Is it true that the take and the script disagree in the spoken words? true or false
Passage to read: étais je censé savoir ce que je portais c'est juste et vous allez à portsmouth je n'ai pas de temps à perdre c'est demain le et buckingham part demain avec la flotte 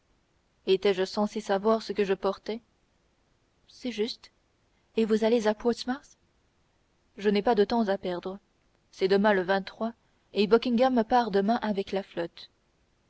false